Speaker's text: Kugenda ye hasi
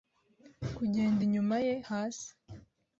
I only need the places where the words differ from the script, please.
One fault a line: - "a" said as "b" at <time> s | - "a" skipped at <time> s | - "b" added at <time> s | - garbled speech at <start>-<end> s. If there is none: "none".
- "inyuma" added at 1.3 s